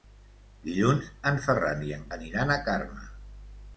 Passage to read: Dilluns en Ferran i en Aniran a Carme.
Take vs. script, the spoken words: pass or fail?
pass